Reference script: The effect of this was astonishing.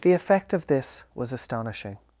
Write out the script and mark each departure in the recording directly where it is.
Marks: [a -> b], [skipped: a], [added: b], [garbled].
The effect of this was astonishing.